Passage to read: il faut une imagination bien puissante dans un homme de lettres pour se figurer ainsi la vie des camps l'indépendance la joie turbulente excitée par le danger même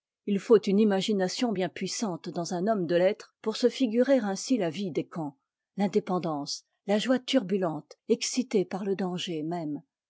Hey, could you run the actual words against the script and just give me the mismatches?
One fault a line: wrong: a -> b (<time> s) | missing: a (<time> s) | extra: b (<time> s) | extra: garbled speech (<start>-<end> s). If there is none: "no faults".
no faults